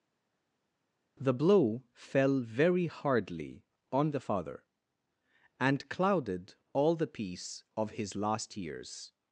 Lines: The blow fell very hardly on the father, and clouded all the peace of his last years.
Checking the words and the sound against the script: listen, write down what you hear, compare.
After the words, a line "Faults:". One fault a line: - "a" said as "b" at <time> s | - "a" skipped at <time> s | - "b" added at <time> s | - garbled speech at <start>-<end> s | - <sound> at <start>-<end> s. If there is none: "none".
The blow fell very hardly on the father, and clouded all the peace of his last years.
Faults:
none